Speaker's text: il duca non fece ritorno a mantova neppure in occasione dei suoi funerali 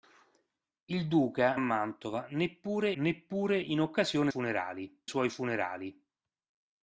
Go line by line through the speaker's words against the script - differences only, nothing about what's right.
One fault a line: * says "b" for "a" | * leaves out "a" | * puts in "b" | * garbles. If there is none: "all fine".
* leaves out "non fece ritorno"
* puts in "neppure"
* says "funerali" for "dei"